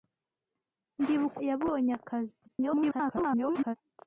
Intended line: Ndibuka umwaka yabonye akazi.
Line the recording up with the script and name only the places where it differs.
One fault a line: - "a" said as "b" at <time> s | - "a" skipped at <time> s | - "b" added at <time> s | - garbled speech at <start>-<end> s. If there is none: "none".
- "umwaka" skipped at 1.4 s
- garbled speech at 2.5-3.8 s